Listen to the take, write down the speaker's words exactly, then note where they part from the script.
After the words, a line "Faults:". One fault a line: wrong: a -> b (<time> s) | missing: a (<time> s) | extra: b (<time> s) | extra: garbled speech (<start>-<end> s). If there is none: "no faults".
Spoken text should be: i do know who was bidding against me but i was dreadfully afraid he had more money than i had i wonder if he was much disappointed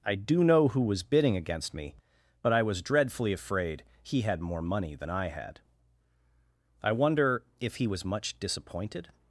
i do know who was bidding against me but i was dreadfully afraid he had more money than i had i wonder if he was much disappointed
Faults:
no faults